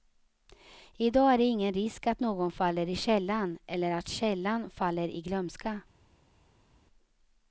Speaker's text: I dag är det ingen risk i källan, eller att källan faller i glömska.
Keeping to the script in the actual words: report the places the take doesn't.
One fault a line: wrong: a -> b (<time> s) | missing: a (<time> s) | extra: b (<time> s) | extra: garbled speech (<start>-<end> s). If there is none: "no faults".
extra: att någon faller (2.1 s)